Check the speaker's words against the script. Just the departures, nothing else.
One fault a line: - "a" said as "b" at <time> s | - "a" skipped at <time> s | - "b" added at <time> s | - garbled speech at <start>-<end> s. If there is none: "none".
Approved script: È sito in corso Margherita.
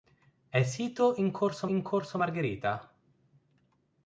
- "in corso" added at 1.7 s